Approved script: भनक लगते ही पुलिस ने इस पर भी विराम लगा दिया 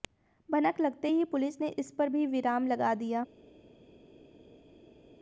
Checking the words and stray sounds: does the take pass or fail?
pass